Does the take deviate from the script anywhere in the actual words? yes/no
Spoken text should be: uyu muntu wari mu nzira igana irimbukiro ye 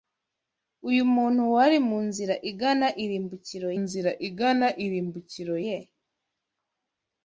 yes